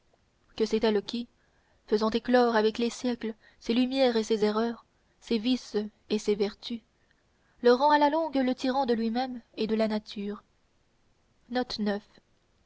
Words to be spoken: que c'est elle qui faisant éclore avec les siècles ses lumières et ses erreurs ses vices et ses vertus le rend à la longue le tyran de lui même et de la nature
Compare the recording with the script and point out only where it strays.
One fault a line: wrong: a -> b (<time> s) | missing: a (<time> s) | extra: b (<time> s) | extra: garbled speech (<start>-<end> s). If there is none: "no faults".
no faults